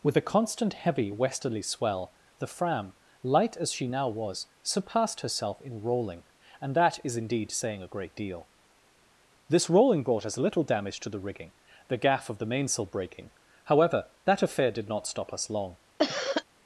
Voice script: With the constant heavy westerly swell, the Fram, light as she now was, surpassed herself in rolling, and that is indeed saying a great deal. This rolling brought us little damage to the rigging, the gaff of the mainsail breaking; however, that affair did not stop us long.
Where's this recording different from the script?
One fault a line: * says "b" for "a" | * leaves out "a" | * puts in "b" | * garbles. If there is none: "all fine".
all fine